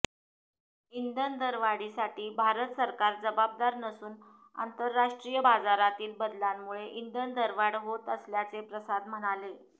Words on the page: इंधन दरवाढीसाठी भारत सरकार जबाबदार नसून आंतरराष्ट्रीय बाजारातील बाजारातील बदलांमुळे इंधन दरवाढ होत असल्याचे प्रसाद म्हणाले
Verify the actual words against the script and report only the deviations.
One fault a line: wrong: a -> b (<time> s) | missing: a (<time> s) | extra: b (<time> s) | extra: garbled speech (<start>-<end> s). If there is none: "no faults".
missing: बाजारातील (6.1 s)